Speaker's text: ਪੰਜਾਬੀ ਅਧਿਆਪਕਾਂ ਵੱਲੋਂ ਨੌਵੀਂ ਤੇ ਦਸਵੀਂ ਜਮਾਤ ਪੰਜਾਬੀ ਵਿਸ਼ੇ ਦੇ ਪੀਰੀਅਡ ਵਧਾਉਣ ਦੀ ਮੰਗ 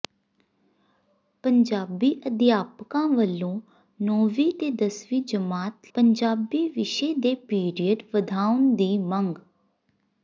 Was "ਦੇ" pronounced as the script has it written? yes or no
yes